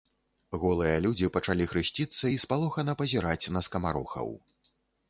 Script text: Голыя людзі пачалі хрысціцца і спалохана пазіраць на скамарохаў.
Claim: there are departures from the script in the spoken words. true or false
false